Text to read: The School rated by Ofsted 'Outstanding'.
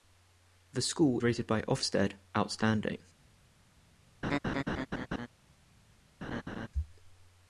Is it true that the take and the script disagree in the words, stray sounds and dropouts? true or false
true